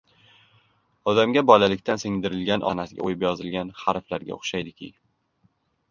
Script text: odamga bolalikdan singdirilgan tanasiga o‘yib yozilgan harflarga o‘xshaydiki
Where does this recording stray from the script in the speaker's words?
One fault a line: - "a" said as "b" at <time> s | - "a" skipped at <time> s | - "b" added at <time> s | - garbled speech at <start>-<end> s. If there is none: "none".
none